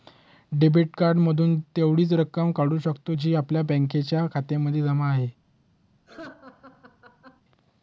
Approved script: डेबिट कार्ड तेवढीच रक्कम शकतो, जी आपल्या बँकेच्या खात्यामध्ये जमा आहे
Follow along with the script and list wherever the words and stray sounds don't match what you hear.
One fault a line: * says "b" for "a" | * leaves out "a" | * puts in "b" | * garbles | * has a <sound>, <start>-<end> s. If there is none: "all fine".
* puts in "मधून"
* puts in "काढू"
* has a laugh, 6.1-7.4 s